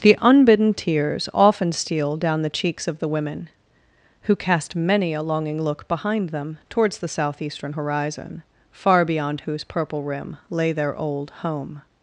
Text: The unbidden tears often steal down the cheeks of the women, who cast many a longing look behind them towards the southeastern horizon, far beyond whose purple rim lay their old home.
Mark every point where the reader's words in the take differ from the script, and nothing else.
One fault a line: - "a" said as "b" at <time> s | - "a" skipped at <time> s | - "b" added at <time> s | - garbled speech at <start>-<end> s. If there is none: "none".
none